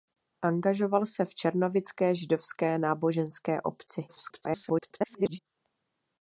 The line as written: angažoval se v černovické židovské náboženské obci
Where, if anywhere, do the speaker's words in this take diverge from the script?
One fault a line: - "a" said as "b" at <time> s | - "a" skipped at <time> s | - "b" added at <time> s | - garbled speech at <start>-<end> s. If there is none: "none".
- garbled speech at 4.1-5.4 s